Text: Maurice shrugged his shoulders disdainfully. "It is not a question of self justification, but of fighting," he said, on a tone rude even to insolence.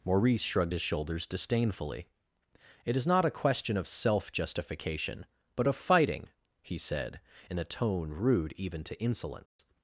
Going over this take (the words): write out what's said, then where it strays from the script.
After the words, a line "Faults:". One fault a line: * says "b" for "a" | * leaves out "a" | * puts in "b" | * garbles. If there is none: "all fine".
Maurice shrugged his shoulders disdainfully. "It is not a question of self justification, but of fighting," he said, in a tone rude even to insolence.
Faults:
* says "in" for "on"